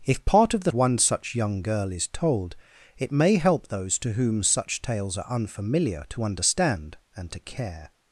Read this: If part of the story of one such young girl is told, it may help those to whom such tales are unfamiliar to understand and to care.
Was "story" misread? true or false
true